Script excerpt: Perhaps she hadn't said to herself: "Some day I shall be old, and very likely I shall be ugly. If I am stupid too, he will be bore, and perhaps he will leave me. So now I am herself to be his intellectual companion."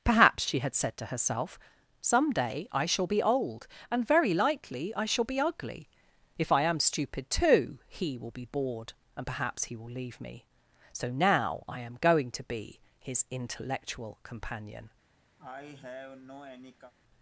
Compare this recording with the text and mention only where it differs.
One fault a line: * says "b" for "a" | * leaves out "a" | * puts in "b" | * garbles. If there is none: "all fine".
* says "had" for "hadn't"
* says "bored" for "bore"
* says "going" for "herself"